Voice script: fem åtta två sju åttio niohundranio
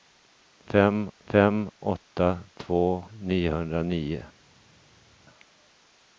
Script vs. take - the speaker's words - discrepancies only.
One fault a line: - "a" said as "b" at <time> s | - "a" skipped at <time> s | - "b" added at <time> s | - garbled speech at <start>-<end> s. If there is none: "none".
- "fem" added at 1.2 s
- "sju åttio" skipped at 3.0 s